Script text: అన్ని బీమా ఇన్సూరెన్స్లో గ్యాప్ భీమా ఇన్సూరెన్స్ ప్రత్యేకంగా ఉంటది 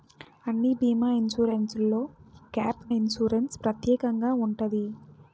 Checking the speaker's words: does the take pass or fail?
fail